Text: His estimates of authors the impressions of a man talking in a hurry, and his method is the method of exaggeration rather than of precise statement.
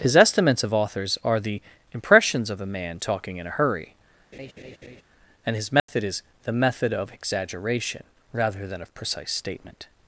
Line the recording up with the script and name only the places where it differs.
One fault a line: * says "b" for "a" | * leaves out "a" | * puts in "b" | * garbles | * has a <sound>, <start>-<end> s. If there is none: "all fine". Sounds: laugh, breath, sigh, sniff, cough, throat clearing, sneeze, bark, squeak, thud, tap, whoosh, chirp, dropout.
* puts in "are"
* has a laugh, 4.3-5.0 s
* has a dropout, 5.8-5.9 s